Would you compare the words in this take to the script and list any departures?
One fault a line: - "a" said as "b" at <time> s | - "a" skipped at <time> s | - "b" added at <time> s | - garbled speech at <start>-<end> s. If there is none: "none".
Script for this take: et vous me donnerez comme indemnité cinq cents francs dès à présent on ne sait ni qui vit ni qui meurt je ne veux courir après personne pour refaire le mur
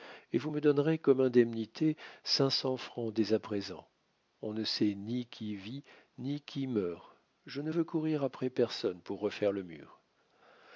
none